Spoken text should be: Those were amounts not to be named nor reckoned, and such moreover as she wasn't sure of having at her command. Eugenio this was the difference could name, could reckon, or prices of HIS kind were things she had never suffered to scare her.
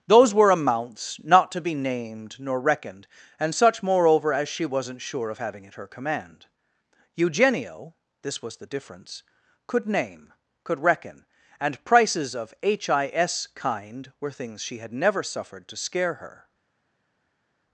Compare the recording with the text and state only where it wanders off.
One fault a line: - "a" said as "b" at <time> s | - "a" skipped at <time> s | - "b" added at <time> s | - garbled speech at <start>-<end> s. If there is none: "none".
- "or" said as "and" at 11.6 s